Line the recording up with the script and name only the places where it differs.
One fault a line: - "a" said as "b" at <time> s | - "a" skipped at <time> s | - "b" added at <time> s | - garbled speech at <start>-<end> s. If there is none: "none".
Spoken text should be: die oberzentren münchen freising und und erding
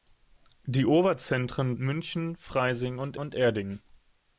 none